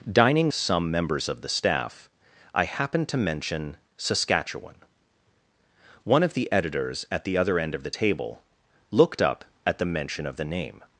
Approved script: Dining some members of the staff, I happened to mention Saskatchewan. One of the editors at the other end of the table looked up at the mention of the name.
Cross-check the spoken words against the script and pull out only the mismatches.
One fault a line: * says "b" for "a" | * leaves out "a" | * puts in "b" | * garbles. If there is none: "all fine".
all fine